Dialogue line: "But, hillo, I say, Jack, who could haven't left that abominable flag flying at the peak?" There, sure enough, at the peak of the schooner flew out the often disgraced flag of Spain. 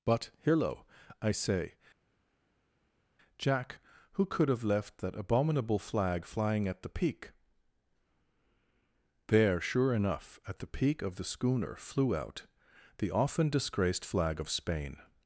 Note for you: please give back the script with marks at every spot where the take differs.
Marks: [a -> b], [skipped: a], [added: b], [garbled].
"But, hillo, I say, Jack, who could [haven't -> have] left that abominable flag flying at the peak?" There, sure enough, at the peak of the schooner flew out the often disgraced flag of Spain.